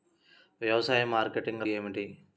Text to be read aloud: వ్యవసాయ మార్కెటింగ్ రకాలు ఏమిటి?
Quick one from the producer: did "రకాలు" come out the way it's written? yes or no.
no